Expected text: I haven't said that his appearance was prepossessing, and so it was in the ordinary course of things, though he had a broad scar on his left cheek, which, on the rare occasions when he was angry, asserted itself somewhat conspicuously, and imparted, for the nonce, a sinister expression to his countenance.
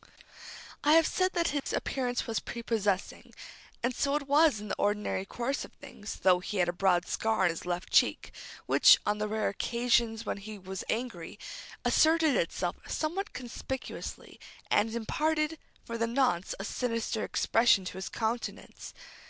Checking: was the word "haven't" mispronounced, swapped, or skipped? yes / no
yes